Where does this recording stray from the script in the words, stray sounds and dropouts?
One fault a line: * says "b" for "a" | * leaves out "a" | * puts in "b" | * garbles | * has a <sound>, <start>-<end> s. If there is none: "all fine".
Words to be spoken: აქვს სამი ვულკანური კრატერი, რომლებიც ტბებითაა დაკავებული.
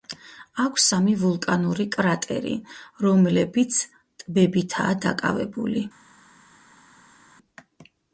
all fine